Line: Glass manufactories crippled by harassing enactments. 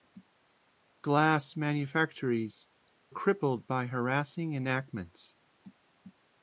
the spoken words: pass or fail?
pass